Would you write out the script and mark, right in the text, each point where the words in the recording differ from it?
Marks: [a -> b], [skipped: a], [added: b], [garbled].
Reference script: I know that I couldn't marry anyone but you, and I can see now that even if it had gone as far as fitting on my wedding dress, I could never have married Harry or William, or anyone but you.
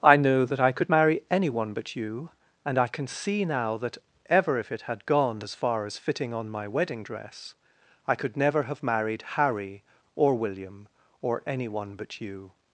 I know that I [couldn't -> could] marry anyone but you, and I can see now that [even -> ever] if it had gone as far as fitting on my wedding dress, I could never have married Harry or William, or anyone but you.